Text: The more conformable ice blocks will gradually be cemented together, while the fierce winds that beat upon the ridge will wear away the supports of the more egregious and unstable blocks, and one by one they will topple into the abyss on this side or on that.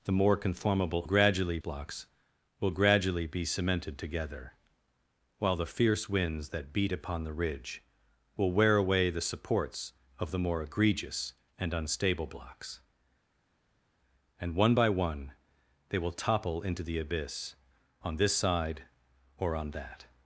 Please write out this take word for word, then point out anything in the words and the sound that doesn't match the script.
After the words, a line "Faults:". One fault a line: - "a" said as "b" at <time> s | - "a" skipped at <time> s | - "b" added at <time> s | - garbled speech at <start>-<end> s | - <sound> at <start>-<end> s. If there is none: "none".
The more conformable gradually blocks will gradually be cemented together, while the fierce winds that beat upon the ridge will wear away the supports of the more egregious and unstable blocks, and one by one they will topple into the abyss on this side or on that.
Faults:
- "ice" said as "gradually" at 1.0 s